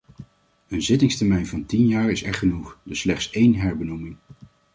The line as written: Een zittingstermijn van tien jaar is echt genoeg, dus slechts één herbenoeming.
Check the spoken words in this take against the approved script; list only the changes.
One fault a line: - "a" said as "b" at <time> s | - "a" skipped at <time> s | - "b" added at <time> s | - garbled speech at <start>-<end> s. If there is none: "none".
none